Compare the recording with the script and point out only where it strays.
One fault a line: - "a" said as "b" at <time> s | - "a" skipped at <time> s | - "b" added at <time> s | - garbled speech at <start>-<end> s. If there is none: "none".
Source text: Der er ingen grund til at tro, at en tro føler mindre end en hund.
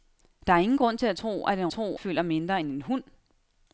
none